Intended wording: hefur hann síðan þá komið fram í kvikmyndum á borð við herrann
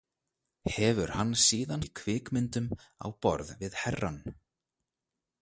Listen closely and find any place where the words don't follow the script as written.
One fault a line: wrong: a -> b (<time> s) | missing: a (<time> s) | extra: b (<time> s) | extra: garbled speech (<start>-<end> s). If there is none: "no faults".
missing: þá komið fram (1.8 s)